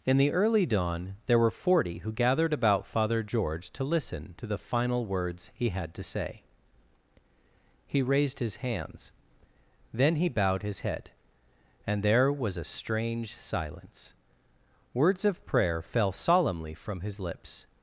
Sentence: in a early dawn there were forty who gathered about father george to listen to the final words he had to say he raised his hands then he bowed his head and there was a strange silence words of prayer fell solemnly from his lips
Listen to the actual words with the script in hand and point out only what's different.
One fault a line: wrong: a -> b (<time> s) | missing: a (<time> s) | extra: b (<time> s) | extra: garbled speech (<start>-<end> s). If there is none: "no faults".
wrong: a -> the (0.2 s)